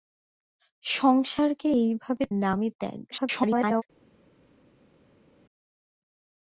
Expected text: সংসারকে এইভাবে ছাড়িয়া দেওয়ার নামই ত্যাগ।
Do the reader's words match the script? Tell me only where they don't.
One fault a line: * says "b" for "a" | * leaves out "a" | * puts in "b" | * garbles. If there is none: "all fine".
* leaves out "ছাড়িয়া দেওয়ার"
* garbles